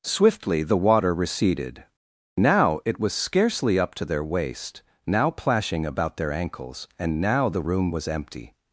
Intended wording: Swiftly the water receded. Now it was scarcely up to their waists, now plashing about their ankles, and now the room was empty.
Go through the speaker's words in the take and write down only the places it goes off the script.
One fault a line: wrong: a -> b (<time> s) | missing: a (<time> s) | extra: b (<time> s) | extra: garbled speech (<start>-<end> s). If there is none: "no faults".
wrong: waists -> waist (4.2 s)